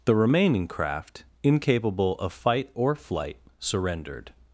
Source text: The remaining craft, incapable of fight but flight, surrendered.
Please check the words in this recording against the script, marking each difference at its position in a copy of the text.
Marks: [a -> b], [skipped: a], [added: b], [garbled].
The remaining craft, incapable of fight [but -> or] flight, surrendered.